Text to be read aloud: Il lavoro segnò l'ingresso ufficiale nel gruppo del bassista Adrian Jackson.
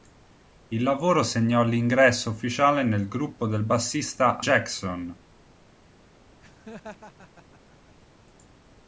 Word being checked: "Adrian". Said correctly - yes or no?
no